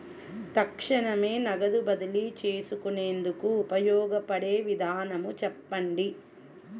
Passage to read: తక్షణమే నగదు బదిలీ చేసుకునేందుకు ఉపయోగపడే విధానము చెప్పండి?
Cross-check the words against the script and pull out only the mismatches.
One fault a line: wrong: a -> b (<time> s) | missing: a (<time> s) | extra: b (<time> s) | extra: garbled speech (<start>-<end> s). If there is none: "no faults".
no faults